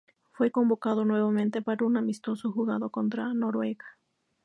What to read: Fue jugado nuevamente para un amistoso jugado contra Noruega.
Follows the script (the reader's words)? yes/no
no